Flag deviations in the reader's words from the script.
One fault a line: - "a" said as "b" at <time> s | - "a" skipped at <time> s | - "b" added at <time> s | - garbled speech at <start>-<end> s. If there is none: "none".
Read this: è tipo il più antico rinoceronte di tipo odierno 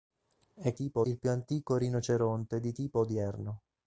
none